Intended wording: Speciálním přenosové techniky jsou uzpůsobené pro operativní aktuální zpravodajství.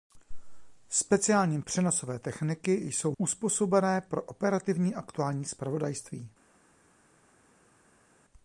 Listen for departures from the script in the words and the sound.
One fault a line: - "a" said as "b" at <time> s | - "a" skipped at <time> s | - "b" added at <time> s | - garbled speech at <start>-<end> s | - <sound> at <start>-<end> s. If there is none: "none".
none